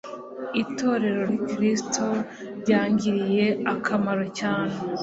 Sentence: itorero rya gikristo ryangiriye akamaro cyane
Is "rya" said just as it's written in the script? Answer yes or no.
no